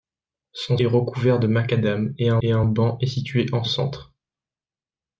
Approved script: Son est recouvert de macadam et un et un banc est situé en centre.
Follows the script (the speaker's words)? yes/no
yes